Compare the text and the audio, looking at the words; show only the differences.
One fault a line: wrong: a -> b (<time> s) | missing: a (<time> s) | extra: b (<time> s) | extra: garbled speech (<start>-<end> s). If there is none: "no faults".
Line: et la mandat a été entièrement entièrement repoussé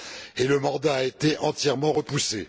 wrong: la -> le (0.5 s)
missing: entièrement (1.9 s)